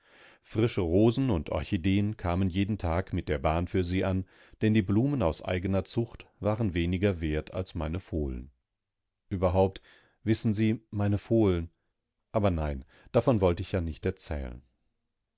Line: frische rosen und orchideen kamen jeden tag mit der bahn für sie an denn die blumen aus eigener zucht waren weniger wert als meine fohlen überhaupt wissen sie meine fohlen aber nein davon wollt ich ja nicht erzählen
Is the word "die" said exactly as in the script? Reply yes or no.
yes